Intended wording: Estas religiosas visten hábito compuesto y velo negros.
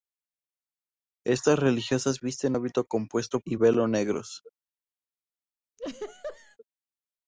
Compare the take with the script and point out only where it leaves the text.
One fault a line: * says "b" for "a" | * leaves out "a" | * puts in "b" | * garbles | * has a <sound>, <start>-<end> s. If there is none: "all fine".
* has a laugh, 5.8-6.6 s